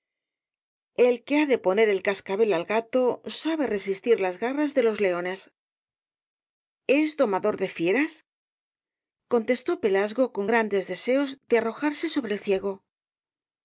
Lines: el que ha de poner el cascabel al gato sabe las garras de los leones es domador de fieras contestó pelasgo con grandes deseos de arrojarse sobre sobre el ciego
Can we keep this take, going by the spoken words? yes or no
no